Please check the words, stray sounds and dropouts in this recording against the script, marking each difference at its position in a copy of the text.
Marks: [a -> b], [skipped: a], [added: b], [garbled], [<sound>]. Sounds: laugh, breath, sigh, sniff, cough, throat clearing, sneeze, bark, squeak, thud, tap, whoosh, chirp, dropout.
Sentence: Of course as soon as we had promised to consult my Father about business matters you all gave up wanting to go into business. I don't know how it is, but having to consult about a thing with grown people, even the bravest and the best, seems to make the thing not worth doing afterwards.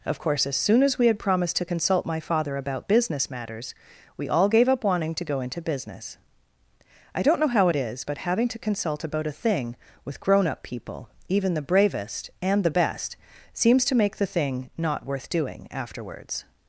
Of course as soon as we had promised to consult my Father about business matters [you -> we] all gave up wanting to go into business. I don't know how it is, but having to consult about a thing with grown [added: up] people, even the bravest and the best, seems to make the thing not worth doing afterwards.